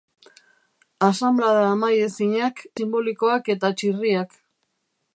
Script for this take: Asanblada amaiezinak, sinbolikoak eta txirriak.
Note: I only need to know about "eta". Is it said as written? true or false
true